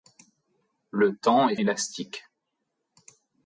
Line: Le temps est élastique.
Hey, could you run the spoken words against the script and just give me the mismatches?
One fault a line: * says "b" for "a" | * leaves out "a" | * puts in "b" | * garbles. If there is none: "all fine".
all fine